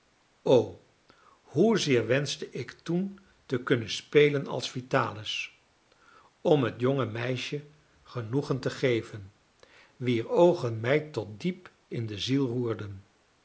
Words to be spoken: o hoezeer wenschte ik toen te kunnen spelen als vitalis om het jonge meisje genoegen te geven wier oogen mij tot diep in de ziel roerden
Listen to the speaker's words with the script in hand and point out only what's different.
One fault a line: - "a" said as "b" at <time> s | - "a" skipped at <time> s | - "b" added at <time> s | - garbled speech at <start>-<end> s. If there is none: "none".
none